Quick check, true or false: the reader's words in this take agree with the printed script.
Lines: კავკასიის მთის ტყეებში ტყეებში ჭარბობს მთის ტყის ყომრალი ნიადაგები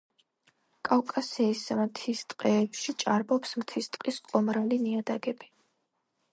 false